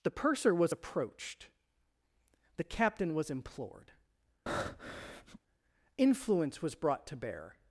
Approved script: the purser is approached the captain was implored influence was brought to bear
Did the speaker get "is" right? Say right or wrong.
wrong